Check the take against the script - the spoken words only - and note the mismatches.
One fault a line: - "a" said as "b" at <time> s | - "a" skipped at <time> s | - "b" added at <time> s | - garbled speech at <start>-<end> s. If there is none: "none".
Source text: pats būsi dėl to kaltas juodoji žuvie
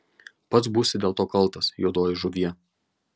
none